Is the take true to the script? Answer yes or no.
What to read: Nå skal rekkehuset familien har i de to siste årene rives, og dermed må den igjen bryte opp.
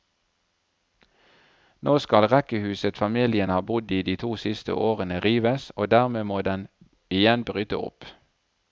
no